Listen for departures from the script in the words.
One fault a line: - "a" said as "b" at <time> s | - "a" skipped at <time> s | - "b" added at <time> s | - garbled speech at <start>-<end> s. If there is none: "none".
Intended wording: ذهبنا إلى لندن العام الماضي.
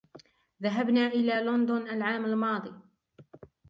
none